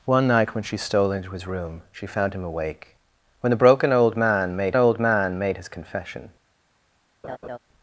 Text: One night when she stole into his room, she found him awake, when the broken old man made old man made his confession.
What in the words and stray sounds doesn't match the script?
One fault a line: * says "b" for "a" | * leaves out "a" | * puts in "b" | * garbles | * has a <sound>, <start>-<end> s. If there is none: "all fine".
* has a laugh, 7.2-7.6 s